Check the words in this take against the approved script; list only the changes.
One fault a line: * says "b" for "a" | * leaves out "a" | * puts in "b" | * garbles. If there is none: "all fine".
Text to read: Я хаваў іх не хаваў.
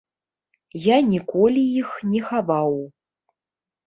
* says "ніколі" for "хаваў"